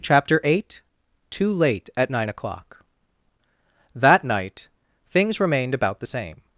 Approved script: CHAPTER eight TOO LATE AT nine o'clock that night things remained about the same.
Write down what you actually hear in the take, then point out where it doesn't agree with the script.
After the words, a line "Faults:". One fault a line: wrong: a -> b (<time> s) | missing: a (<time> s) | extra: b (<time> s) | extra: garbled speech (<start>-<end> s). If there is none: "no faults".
CHAPTER eight TOO LATE AT nine o'clock that night things remained about the same.
Faults:
no faults